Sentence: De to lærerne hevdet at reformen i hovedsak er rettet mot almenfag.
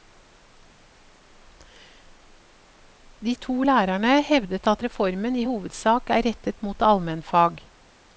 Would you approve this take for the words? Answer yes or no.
yes